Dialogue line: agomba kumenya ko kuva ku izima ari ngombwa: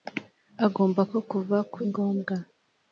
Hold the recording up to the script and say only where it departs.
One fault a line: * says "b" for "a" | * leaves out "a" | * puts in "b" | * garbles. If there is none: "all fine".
* leaves out "kumenya"
* leaves out "izima ari"